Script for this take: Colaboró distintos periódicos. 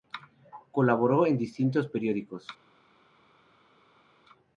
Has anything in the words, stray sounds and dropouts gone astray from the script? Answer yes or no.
yes